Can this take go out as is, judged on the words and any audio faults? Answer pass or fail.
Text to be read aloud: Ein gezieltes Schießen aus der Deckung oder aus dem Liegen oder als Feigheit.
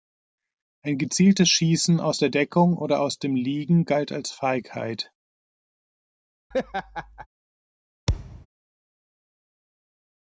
fail